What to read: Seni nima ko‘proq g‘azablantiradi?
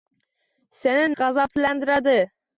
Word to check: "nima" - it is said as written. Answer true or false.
false